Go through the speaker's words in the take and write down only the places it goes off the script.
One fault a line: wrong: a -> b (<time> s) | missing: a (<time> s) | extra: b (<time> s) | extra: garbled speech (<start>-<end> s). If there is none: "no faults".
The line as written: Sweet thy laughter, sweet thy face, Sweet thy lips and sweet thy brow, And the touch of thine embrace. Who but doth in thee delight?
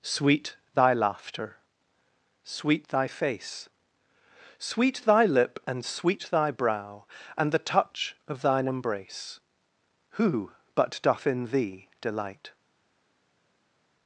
wrong: lips -> lip (5.2 s)